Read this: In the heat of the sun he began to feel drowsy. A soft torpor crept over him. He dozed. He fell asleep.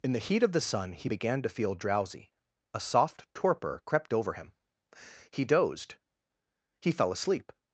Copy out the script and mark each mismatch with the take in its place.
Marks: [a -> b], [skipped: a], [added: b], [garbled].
In the heat of the sun he began to feel drowsy. A soft torpor crept over him. He dozed. He fell asleep.